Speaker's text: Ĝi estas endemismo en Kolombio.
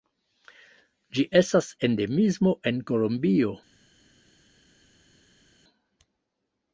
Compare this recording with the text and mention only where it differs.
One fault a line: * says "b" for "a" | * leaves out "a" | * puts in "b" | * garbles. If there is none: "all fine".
all fine